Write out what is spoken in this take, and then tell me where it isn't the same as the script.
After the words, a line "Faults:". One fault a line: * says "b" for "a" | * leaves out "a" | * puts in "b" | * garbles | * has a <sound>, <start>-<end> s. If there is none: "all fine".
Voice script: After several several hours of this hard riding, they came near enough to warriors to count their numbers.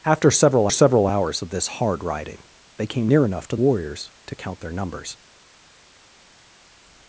After several several hours of this hard riding, they came near enough to warriors to count their numbers.
Faults:
all fine